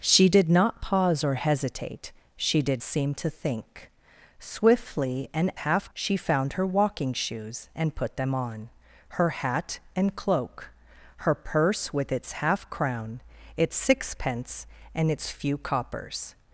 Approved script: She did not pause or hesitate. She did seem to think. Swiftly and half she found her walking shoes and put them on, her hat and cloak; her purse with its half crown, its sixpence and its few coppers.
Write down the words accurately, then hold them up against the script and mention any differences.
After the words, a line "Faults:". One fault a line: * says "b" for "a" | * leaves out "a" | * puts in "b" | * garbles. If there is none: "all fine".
She did not pause or hesitate. She did seem to think. Swiftly and half she found her walking shoes and put them on, her hat and cloak; her purse with its half crown, its sixpence and its few coppers.
Faults:
all fine